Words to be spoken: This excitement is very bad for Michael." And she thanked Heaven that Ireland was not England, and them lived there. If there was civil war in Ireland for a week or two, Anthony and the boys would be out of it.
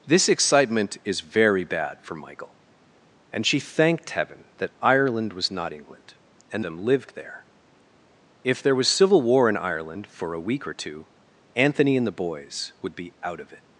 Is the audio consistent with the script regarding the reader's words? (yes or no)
yes